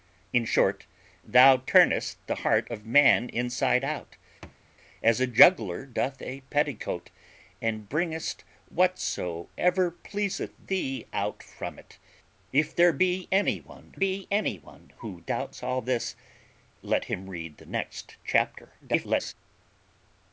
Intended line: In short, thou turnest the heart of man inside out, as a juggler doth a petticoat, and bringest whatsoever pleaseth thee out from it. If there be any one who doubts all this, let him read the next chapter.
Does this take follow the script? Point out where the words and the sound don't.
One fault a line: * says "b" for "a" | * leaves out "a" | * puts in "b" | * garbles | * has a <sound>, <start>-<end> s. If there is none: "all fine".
* has a thud, 4.4-4.6 s
* puts in "be any one"
* garbles